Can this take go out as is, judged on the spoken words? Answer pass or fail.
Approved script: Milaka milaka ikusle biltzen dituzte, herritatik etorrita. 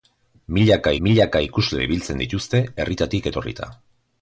pass